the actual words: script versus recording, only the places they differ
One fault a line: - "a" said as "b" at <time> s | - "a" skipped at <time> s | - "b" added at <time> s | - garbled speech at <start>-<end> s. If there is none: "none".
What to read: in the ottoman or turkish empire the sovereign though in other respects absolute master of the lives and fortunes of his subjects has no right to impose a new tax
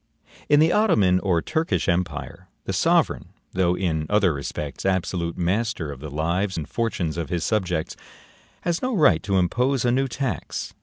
none